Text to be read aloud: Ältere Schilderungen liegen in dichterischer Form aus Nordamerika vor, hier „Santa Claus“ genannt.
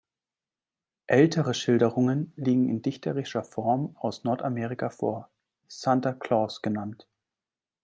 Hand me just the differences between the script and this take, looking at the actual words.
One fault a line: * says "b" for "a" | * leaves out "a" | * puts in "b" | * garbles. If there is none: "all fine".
* leaves out "hier"